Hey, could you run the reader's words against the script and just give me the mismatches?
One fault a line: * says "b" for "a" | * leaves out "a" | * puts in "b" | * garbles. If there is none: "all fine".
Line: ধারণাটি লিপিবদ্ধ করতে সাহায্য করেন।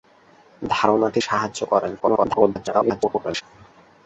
* leaves out "লিপিবদ্ধ করতে"
* garbles